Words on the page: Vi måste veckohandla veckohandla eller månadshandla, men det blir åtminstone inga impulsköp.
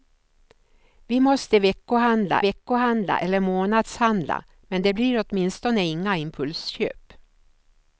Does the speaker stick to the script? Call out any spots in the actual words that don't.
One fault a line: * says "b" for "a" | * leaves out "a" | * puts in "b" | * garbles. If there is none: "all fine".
all fine